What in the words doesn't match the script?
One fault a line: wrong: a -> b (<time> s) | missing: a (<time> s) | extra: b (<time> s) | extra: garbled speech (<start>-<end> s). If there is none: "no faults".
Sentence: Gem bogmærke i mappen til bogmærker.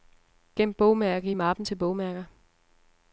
no faults